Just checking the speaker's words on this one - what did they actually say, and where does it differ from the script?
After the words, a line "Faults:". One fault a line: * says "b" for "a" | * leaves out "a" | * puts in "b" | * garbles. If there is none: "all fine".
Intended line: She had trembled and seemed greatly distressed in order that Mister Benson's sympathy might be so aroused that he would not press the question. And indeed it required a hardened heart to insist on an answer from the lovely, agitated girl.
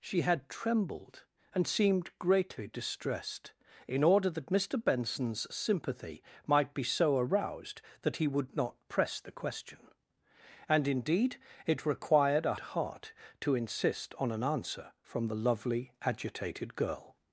She had trembled and seemed greatly distressed in order that Mister Benson's sympathy might be so aroused that he would not press the question. And indeed it required a heart to insist on an answer from the lovely, agitated girl.
Faults:
* leaves out "hardened"